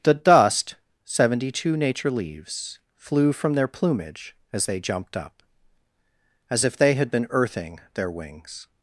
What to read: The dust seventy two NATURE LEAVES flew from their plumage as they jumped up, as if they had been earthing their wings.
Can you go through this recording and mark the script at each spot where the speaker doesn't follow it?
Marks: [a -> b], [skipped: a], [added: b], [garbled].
The dust seventy two NATURE LEAVES flew from their plumage as they jumped up, as if they had been earthing their wings.